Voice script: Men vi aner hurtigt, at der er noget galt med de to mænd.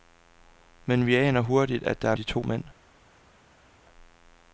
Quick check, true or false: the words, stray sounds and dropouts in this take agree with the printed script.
false